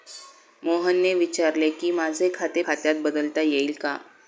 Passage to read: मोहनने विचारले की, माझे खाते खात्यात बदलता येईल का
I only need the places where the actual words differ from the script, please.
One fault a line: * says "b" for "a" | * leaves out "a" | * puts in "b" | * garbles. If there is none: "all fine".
all fine